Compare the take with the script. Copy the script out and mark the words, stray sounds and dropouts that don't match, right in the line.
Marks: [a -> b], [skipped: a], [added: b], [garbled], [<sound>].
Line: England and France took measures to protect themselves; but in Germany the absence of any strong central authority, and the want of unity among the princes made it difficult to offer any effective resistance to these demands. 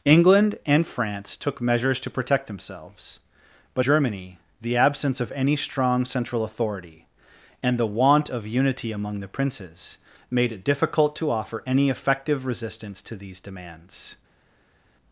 England and France took measures to protect themselves; but [skipped: in] Germany the absence of any strong central authority, and the want of unity among the princes made it difficult to offer any effective resistance to these demands.